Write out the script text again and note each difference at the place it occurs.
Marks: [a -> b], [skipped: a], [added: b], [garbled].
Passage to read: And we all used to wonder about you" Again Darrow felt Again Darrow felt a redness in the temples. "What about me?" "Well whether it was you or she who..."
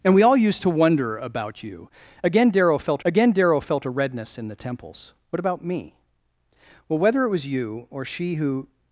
And we all used to wonder about you" Again Darrow felt Again Darrow felt a redness in the temples. "What about me?" "Well whether it was you or she who..."